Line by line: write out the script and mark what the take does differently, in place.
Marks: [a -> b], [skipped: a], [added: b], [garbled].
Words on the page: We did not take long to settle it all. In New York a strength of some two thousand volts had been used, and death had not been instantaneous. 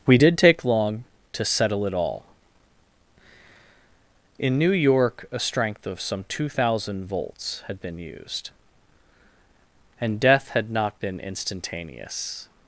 We did [skipped: not] take long to settle it all. In New York a strength of some two thousand volts had been used, and death had not been instantaneous.